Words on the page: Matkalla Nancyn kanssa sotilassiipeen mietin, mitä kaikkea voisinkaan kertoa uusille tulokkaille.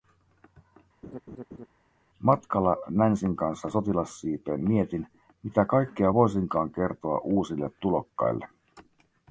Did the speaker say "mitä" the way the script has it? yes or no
yes